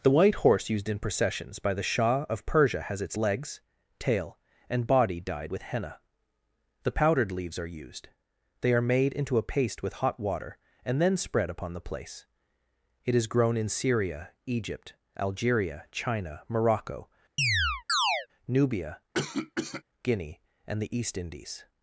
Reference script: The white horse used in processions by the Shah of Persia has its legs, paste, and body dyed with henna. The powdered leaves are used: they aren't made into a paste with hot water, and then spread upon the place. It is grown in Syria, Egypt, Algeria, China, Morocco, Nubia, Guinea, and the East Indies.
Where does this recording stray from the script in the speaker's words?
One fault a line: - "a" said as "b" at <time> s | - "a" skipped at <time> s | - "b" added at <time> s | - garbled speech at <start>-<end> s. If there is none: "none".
- "paste" said as "tail" at 4.0 s
- "aren't" said as "are" at 8.7 s